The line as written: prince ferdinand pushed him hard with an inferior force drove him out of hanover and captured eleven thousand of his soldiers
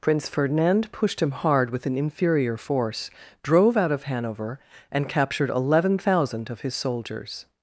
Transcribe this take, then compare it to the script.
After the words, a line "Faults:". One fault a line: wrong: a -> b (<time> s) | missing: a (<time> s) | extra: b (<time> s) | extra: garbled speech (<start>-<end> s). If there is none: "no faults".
prince ferdinand pushed him hard with an inferior force drove out of hanover and captured eleven thousand of his soldiers
Faults:
missing: him (3.7 s)